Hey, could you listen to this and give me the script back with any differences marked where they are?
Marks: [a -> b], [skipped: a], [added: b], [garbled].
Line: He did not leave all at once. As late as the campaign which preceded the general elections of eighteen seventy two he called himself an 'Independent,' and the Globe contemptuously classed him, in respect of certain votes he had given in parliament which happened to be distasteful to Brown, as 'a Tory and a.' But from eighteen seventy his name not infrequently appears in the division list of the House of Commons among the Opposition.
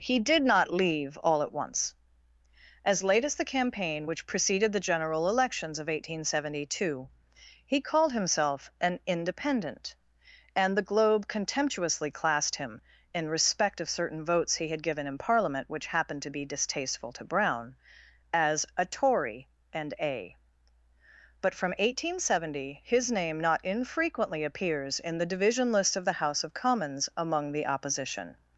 He did not leave all at once. As late as the campaign which preceded the general elections of eighteen seventy two he called himself an 'Independent,' and the Globe contemptuously classed him, in respect of certain votes he had given in parliament which happened to be distasteful to Brown, as 'a Tory and a.' But from eighteen seventy his name not infrequently appears in the division list of the House of Commons among the Opposition.